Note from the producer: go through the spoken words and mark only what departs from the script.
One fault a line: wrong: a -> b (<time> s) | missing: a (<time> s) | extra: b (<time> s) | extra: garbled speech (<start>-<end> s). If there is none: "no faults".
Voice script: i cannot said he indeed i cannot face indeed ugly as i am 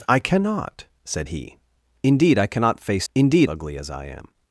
no faults